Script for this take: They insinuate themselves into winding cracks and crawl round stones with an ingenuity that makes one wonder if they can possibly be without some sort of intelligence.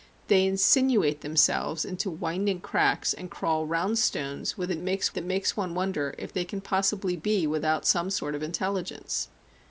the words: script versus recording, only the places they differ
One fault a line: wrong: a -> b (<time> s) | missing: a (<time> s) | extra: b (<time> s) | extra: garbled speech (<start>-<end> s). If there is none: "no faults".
wrong: ingenuity -> makes (4.8 s)